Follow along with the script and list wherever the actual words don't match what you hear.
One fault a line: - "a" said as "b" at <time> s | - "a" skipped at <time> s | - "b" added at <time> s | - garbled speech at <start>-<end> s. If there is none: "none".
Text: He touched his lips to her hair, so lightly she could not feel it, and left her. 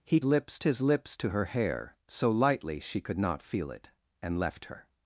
- "touched" said as "lips" at 0.2 s